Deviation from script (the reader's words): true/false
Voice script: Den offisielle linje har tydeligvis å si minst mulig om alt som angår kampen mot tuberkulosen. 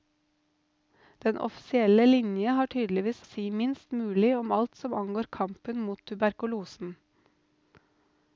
false